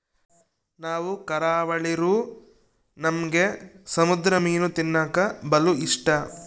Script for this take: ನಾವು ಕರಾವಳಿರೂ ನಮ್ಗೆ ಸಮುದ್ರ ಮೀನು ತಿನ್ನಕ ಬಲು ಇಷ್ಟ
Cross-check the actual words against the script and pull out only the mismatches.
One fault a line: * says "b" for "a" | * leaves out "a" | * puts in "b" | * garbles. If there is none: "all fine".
all fine